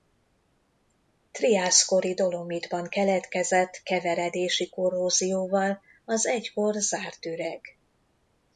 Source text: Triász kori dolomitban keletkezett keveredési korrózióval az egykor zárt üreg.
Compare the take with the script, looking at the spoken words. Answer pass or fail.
pass